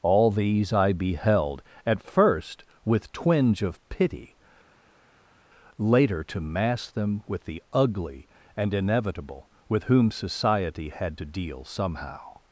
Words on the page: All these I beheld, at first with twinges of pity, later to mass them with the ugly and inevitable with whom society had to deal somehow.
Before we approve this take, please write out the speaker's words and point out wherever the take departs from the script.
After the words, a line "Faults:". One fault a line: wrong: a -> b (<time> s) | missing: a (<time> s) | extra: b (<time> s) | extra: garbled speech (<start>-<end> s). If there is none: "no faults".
All these I beheld, at first with twinge of pity, later to mass them with the ugly and inevitable with whom society had to deal somehow.
Faults:
wrong: twinges -> twinge (3.1 s)